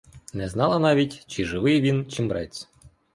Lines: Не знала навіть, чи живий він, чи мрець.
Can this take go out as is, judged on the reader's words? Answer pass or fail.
pass